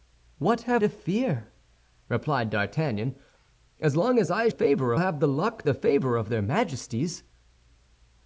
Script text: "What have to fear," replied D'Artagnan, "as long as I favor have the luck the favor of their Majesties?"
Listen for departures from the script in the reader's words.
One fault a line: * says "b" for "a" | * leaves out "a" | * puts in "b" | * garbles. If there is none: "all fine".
all fine